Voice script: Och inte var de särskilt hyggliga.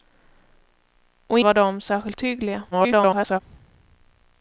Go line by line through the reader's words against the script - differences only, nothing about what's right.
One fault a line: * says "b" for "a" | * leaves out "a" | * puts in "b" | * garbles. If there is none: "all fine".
* leaves out "inte"
* garbles